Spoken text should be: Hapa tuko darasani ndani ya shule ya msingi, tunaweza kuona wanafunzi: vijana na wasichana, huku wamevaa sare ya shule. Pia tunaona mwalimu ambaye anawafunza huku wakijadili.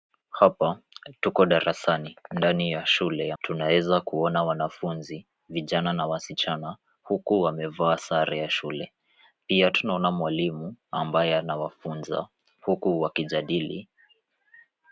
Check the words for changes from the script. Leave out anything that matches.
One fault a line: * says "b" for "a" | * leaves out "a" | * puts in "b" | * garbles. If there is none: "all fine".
* leaves out "msingi"